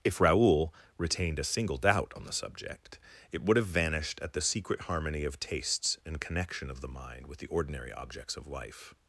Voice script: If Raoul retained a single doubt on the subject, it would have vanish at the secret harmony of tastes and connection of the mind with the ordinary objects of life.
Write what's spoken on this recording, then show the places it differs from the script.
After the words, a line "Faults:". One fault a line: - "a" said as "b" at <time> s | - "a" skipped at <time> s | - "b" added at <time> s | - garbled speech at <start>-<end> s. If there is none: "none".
If Raoul retained a single doubt on the subject, it would have vanished at the secret harmony of tastes and connection of the mind with the ordinary objects of life.
Faults:
- "vanish" said as "vanished" at 3.7 s